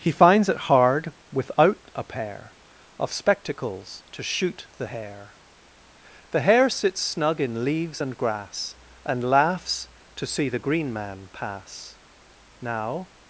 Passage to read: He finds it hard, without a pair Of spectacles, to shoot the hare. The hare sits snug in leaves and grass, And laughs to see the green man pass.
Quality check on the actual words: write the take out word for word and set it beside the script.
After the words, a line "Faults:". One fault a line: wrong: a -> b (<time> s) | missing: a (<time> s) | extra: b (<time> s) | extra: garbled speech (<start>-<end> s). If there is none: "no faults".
He finds it hard, without a pair Of spectacles, to shoot the hare. The hare sits snug in leaves and grass, And laughs to see the green man pass. Now
Faults:
extra: Now (12.6 s)